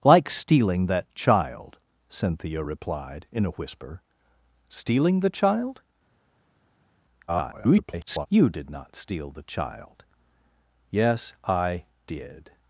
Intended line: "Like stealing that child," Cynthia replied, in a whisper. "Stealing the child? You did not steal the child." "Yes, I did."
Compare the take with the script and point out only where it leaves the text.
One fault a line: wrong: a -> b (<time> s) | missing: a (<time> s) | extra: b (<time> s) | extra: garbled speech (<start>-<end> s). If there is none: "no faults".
extra: garbled speech (7.3-8.3 s)